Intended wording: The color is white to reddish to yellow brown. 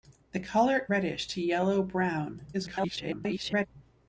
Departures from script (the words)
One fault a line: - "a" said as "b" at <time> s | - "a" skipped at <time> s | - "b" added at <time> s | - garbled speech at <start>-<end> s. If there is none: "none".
- "is white to" skipped at 0.9 s
- garbled speech at 2.5-3.7 s